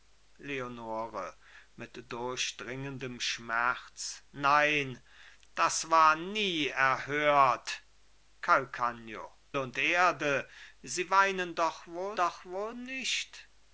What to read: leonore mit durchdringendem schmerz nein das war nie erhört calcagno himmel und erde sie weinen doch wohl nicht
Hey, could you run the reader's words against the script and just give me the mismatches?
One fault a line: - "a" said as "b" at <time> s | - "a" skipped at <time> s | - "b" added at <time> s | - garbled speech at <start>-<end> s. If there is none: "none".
- "himmel" skipped at 9.4 s
- "doch wohl" added at 12.1 s